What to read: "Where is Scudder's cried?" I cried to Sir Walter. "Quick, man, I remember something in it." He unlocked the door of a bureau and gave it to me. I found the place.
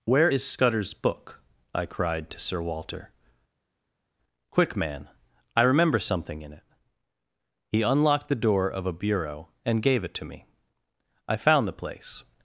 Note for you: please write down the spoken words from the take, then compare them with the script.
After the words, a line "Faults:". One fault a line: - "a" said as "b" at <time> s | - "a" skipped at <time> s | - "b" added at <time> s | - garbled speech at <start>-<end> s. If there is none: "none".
"Where is Scudder's book?" I cried to Sir Walter. "Quick, man, I remember something in it." He unlocked the door of a bureau and gave it to me. I found the place.
Faults:
- "cried" said as "book" at 0.9 s